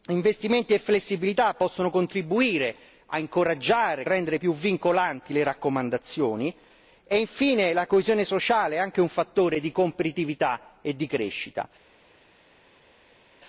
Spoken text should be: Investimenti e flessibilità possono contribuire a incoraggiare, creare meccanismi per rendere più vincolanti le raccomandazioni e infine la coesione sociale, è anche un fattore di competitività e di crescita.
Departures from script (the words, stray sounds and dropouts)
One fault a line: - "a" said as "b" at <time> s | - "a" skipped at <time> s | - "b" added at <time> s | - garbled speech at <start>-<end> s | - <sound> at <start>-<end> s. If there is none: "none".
- "creare meccanismi per" skipped at 4.1 s